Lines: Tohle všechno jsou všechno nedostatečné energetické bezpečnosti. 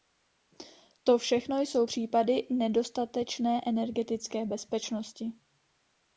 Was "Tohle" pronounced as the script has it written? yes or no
no